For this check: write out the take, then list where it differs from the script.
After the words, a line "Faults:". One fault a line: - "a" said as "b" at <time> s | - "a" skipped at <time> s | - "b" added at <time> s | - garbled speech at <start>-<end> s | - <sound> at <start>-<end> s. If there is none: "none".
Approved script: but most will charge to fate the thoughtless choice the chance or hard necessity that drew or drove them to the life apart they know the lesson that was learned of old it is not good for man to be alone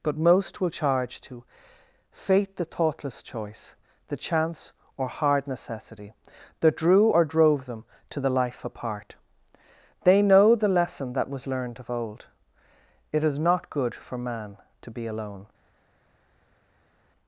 but most will charge to fate the thoughtless choice the chance or hard necessity that drew or drove them to the life apart they know the lesson that was learned of old it is not good for man to be alone
Faults:
none